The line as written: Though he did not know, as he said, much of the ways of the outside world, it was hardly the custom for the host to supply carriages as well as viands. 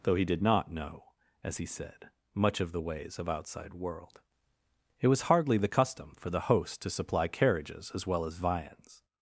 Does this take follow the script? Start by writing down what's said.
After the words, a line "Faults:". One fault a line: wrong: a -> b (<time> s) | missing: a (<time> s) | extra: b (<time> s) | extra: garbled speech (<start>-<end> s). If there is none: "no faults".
Though he did not know, as he said, much of the ways of outside world, it was hardly the custom for the host to supply carriages as well as viands.
Faults:
missing: the (3.3 s)